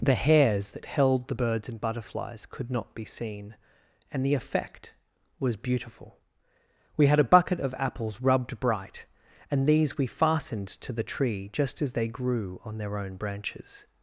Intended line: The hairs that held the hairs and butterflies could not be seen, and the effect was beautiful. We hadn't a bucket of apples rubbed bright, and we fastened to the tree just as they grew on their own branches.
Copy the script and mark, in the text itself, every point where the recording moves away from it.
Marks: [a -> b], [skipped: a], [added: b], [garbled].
The hairs that held the [hairs -> birds] and butterflies could not be seen, and the effect was beautiful. We [hadn't -> had] a bucket of apples rubbed bright, and [added: these] we fastened to the tree just as they grew on their own branches.